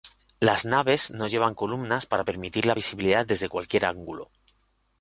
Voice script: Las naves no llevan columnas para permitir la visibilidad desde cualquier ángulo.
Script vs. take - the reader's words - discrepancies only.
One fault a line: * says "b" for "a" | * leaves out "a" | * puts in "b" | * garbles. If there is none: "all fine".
all fine